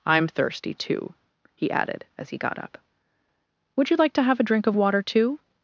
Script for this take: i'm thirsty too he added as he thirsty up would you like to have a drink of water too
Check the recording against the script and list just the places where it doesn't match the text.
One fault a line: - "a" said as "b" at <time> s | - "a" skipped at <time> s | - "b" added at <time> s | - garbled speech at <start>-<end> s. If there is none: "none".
- "thirsty" said as "got" at 2.4 s